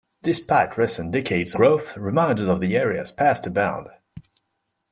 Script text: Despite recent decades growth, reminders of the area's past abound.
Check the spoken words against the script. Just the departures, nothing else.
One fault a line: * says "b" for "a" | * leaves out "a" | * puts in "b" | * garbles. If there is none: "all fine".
all fine